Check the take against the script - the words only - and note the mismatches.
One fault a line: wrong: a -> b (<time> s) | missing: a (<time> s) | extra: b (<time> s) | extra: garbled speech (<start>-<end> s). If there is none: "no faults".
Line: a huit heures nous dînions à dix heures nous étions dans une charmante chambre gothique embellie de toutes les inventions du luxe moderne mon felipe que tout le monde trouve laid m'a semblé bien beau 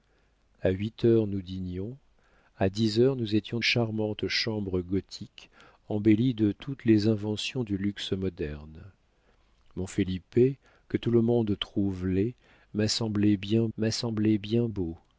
missing: dans une (3.6 s)
extra: m'a semblé bien (13.8 s)